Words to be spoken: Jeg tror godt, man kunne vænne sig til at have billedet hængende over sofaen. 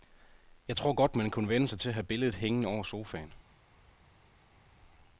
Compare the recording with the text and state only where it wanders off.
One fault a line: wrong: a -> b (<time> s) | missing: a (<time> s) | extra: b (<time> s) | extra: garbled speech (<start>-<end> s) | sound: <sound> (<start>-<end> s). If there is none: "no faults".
no faults